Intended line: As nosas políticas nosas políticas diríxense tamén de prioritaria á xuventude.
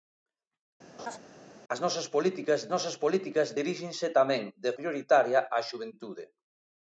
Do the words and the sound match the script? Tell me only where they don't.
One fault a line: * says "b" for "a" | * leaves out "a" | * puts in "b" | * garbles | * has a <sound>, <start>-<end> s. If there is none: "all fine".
* has a laugh, 1.0-1.2 s